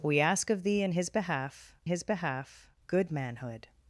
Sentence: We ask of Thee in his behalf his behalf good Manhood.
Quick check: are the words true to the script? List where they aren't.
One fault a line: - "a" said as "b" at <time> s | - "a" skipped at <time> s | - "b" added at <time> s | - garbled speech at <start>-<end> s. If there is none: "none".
none